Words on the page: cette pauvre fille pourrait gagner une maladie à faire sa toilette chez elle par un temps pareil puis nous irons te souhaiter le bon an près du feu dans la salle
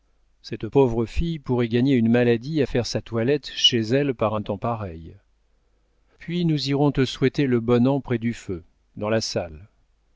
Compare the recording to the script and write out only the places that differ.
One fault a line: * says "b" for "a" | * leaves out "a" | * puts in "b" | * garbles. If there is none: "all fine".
all fine